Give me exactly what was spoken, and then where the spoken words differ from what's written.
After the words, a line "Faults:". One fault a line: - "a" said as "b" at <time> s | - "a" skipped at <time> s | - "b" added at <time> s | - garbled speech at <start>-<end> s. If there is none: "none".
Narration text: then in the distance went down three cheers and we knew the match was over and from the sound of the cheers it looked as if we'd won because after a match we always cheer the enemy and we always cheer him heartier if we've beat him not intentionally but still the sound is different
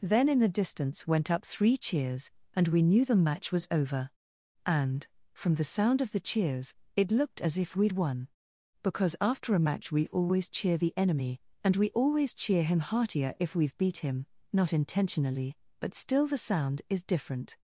then in the distance went up three cheers and we knew the match was over and from the sound of the cheers it looked as if we'd won because after a match we always cheer the enemy and we always cheer him heartier if we've beat him not intentionally but still the sound is different
Faults:
- "down" said as "up" at 1.3 s